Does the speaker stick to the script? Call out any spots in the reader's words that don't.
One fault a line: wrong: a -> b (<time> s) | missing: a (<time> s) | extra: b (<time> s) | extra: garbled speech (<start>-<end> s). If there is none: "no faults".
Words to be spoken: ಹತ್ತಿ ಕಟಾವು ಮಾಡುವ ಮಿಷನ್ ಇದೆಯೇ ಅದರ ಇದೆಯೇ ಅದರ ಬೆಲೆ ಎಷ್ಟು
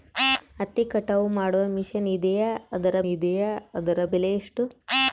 no faults